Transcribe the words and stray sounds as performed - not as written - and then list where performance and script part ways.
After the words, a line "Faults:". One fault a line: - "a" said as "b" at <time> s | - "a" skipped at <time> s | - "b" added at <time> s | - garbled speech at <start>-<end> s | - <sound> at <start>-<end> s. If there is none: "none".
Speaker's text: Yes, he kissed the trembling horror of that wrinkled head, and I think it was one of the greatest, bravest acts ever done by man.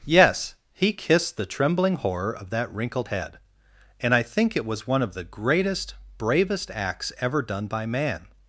Yes, he kissed the trembling horror of that wrinkled head, and I think it was one of the greatest, bravest acts ever done by man.
Faults:
none